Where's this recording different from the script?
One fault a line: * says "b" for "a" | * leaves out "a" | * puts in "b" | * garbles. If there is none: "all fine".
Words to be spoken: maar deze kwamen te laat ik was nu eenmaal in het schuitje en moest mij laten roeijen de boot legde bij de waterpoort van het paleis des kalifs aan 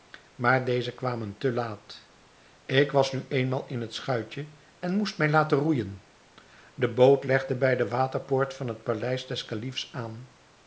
all fine